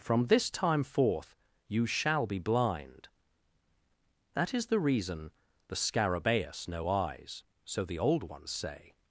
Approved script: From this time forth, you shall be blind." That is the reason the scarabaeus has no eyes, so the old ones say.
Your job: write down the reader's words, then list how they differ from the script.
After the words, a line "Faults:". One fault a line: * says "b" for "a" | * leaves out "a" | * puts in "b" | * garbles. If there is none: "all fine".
From this time forth, you shall be blind." That is the reason the scarabaeus no eyes, so the old ones say.
Faults:
* leaves out "has"